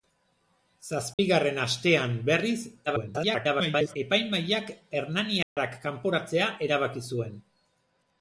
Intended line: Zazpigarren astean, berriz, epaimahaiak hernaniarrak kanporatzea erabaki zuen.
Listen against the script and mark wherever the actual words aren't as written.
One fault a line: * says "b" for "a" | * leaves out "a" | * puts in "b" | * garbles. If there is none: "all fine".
* garbles